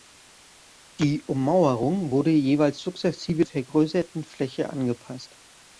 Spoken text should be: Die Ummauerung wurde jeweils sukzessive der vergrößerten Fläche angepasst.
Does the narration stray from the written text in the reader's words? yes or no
yes